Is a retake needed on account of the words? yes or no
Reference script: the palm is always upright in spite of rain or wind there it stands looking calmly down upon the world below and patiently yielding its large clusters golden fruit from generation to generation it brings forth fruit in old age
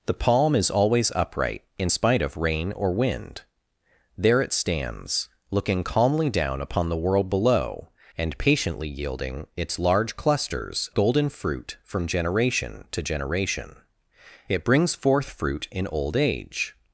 no